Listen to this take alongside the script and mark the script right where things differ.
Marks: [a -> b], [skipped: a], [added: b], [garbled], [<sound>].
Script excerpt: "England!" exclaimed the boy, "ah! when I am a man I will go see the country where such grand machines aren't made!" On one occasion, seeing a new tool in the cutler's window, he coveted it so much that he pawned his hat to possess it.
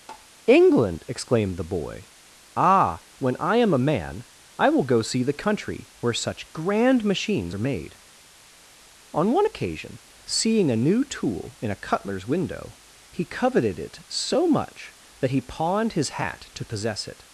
[tap] "England!" exclaimed the boy, "ah! when I am a man I will go see the country where such grand machines [aren't -> are] made!" On one occasion, seeing a new tool in [the -> a] cutler's window, he coveted it so much that he pawned his hat to possess it.